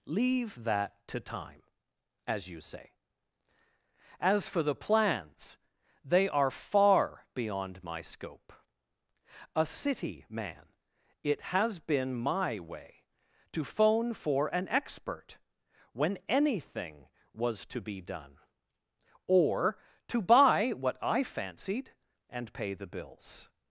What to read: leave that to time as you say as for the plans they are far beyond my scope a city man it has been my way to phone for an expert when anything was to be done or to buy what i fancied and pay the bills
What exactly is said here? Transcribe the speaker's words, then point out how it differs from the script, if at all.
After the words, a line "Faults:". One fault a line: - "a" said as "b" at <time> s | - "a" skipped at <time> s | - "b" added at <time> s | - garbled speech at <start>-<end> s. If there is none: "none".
leave that to time as you say as for the plans they are far beyond my scope a city man it has been my way to phone for an expert when anything was to be done or to buy what i fancied and pay the bills
Faults:
none